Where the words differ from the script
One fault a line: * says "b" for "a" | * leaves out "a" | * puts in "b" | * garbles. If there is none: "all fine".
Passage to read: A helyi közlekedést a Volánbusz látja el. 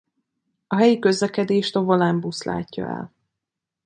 all fine